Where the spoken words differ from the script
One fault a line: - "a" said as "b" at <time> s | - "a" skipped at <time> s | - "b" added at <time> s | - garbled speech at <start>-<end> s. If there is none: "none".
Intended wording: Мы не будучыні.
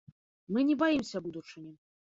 - "баімся" added at 0.8 s